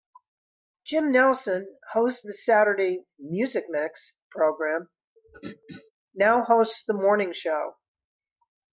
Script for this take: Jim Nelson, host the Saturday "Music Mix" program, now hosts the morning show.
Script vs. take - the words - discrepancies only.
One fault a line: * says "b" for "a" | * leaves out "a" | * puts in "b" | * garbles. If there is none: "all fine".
all fine